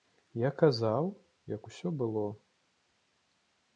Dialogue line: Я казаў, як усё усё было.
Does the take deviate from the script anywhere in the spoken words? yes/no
yes